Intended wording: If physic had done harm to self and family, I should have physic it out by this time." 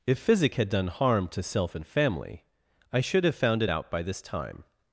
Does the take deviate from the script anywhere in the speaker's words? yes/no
yes